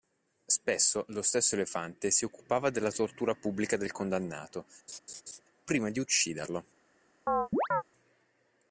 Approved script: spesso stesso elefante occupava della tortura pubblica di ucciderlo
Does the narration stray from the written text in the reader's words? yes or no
yes